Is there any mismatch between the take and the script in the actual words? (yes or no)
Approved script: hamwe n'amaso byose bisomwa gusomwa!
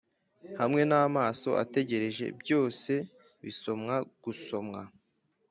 yes